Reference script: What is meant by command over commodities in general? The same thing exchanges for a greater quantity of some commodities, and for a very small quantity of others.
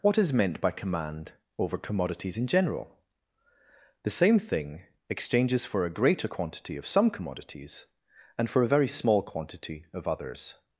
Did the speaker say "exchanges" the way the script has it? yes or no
yes